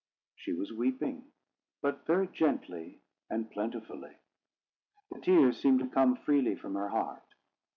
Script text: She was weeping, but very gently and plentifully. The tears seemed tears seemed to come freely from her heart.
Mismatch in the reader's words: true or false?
true